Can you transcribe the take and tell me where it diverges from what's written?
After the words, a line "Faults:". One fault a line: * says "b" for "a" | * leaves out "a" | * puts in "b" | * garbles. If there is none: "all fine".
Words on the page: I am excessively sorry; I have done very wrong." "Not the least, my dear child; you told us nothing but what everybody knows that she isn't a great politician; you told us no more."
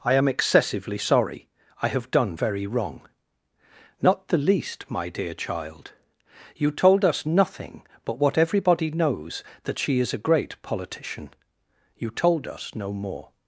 I am excessively sorry; I have done very wrong." "Not the least, my dear child; you told us nothing but what everybody knows that she is a great politician; you told us no more."
Faults:
* says "is" for "isn't"